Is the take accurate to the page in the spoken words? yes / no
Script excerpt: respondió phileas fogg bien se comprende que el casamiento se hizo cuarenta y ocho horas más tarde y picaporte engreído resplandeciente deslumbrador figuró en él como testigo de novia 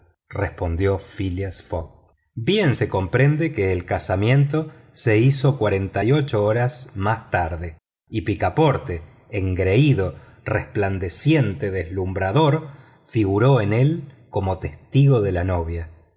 no